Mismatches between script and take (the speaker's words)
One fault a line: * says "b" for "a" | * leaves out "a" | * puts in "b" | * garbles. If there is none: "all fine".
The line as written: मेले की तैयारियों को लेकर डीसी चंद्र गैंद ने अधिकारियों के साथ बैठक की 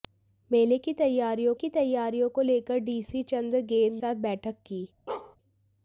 * puts in "की तैयारियों"
* leaves out "ने अधिकारियों के"